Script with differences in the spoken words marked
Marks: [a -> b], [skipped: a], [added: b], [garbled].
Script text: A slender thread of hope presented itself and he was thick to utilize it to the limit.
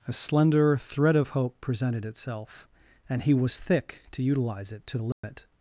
A slender thread of hope presented itself and he was thick to utilize it to the limit.